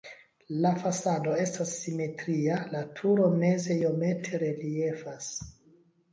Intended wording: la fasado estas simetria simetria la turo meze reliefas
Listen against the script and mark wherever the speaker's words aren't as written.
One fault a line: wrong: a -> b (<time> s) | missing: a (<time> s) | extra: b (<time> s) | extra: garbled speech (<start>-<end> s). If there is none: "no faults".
missing: simetria (2.6 s)
extra: iomete (3.8 s)